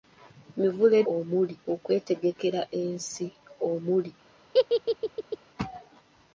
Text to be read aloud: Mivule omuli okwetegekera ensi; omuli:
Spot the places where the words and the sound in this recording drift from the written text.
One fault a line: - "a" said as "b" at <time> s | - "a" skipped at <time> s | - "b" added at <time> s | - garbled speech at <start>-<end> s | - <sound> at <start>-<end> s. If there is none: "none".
- laugh at 4.5-5.4 s